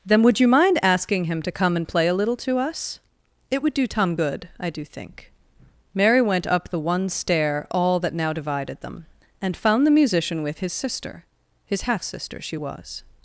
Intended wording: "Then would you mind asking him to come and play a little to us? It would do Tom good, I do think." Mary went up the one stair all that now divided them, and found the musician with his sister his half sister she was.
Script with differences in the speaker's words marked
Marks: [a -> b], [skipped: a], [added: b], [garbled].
"Then would you mind asking him to come and play a little to us? It would do Tom good, I do think." Mary went up the one stair all that now divided them, and found the musician with his sister his half sister she was.